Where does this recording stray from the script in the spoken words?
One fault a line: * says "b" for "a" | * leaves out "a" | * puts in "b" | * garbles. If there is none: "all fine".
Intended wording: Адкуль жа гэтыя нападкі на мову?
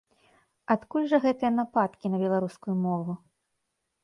* puts in "беларускую"